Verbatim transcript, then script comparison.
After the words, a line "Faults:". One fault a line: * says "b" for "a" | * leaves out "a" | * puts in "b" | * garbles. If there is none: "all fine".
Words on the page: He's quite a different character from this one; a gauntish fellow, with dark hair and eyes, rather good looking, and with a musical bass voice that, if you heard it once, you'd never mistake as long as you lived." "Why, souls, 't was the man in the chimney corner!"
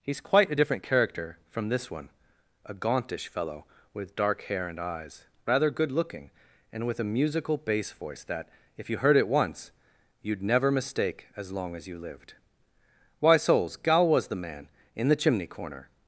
He's quite a different character from this one; a gauntish fellow, with dark hair and eyes, rather good looking, and with a musical bass voice that, if you heard it once, you'd never mistake as long as you lived." "Why, souls, 'gal was the man in the chimney corner!"
Faults:
* says "gal" for "t"